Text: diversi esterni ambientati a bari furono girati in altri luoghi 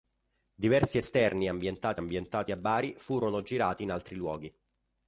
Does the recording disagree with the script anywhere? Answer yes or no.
yes